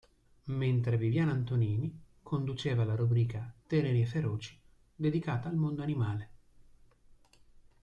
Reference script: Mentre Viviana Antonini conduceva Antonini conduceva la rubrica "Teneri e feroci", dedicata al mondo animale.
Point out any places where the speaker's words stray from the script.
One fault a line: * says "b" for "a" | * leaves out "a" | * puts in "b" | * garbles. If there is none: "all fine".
* leaves out "Antonini conduceva"